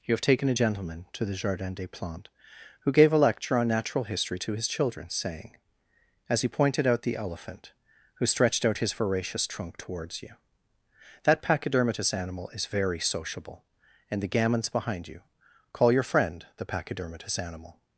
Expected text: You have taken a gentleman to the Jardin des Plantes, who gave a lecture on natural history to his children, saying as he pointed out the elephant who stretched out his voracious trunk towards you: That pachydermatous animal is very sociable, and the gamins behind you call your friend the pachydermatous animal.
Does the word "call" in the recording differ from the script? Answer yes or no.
no